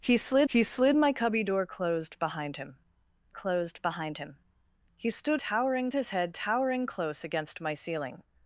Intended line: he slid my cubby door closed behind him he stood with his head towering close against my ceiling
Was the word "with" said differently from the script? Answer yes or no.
yes